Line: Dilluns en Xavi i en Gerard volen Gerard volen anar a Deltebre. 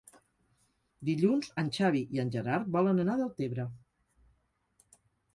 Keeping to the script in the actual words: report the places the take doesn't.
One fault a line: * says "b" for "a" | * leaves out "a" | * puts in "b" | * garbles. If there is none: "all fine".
* leaves out "Gerard volen"